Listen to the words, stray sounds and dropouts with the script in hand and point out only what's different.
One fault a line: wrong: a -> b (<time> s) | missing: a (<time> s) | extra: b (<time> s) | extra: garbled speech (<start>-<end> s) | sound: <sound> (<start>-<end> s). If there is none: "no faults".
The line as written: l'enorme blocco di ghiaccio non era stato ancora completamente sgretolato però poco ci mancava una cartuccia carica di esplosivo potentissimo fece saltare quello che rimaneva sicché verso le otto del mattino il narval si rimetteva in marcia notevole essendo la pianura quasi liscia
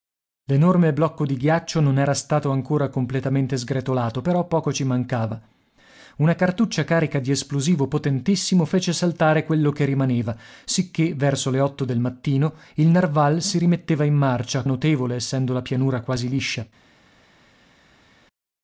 no faults